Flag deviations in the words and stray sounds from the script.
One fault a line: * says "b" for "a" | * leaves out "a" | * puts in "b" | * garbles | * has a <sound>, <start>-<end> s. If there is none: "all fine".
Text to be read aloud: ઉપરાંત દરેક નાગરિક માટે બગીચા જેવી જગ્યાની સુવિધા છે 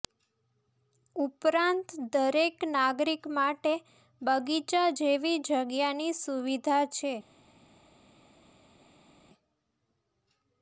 all fine